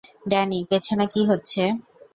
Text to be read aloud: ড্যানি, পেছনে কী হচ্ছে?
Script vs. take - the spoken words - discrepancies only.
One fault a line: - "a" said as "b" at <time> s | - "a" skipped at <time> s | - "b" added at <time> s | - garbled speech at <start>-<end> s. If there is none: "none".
none